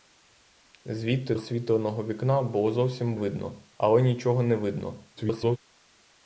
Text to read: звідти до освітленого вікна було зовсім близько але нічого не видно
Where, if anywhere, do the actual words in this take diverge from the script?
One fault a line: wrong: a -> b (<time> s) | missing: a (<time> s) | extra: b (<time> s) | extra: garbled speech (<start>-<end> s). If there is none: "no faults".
missing: до (1.4 s)
wrong: близько -> видно (3.1 s)
extra: garbled speech (5.2-5.6 s)